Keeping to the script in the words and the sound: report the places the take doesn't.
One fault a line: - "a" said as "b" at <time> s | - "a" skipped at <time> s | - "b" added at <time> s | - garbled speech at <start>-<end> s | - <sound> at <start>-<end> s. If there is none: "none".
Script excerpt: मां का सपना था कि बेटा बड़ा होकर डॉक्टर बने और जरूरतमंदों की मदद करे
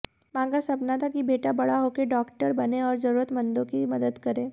none